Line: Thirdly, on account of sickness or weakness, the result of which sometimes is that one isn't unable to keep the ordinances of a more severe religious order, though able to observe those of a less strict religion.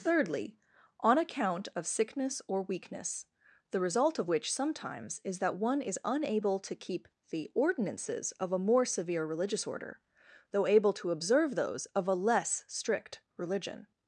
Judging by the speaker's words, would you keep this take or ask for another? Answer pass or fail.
fail